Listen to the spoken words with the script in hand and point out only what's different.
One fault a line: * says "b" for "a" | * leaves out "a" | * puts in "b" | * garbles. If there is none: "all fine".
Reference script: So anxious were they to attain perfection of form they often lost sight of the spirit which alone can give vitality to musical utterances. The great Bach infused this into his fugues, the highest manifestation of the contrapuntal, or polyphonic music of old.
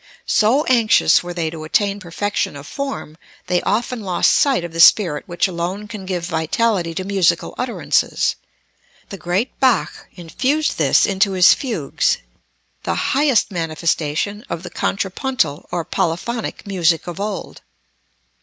all fine